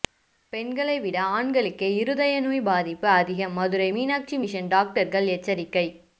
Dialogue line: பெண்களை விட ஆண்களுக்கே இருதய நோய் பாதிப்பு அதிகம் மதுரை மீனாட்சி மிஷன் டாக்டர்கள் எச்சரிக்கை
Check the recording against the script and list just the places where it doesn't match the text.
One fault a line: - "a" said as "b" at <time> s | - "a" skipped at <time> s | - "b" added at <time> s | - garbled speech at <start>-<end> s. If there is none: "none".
none